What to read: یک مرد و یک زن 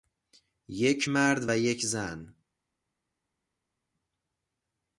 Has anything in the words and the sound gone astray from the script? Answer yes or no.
no